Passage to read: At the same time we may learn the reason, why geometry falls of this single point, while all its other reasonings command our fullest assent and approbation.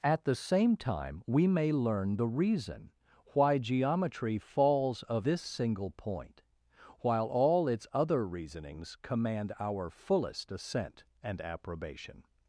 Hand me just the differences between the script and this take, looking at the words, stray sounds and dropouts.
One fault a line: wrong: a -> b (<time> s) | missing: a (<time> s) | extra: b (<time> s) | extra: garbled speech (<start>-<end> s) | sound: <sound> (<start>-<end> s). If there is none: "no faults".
no faults